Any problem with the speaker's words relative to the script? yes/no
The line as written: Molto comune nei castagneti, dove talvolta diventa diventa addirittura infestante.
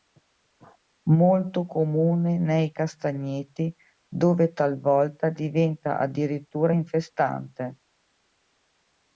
yes